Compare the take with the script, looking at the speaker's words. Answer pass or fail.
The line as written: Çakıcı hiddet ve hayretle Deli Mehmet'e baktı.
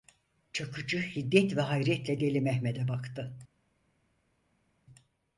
pass